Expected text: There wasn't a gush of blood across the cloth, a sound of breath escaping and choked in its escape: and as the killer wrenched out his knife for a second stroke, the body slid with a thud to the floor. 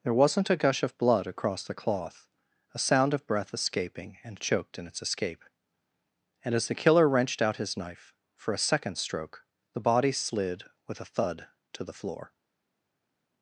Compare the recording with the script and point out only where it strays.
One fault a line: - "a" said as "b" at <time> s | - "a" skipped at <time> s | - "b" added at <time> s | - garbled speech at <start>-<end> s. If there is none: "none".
none